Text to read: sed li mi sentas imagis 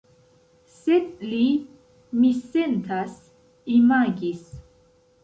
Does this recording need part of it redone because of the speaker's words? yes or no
no